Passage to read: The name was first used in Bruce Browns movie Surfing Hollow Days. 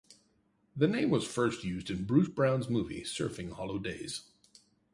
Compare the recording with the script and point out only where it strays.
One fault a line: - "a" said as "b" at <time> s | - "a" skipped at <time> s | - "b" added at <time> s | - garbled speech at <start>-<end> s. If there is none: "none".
none